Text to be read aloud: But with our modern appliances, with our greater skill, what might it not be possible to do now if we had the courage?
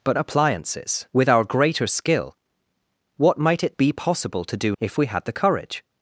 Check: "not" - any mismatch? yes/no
yes